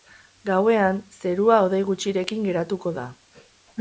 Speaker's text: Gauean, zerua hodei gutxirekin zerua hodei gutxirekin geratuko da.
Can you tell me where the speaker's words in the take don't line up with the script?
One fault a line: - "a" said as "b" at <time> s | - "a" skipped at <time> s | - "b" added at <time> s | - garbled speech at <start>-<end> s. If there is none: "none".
- "zerua hodei gutxirekin" skipped at 2.5 s